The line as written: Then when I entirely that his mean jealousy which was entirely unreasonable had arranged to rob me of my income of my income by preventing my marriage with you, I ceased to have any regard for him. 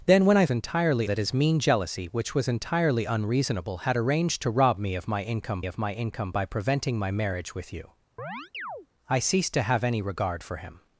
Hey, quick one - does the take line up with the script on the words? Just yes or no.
yes